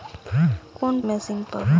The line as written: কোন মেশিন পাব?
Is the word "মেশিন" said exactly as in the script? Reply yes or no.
yes